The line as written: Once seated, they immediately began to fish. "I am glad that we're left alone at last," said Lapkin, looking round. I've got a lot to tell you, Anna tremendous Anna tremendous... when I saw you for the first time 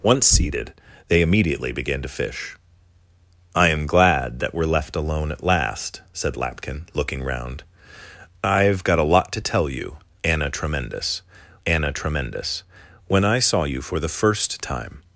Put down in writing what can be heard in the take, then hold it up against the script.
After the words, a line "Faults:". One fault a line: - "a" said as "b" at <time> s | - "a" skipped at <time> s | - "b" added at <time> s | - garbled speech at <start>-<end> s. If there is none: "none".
Once seated, they immediately began to fish. "I am glad that we're left alone at last," said Lapkin, looking round. I've got a lot to tell you, Anna tremendous Anna tremendous... when I saw you for the first time
Faults:
none